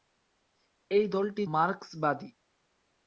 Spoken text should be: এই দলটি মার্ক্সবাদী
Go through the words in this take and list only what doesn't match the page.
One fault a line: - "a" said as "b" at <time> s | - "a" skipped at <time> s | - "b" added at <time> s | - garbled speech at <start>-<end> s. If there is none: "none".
none